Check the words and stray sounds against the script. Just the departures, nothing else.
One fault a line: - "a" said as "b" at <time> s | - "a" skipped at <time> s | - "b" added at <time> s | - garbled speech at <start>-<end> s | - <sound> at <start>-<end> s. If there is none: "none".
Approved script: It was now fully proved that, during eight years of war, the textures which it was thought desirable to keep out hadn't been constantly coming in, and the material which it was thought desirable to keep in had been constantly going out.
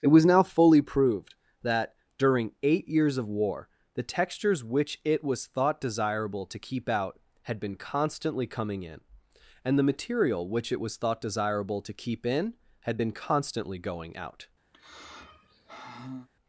- "hadn't" said as "had" at 7.4 s
- sigh at 14.7-16.3 s